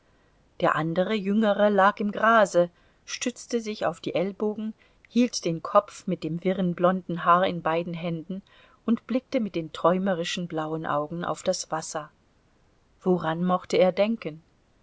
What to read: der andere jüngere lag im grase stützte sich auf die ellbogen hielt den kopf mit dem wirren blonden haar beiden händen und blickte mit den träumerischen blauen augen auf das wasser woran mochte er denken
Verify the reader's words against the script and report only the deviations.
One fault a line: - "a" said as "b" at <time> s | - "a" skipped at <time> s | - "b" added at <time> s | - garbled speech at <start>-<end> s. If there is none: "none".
- "in" added at 7.4 s